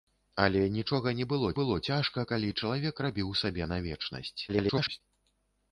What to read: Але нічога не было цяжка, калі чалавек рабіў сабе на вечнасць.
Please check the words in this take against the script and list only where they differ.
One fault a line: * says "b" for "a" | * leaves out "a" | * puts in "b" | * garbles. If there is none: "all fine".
* puts in "было"
* garbles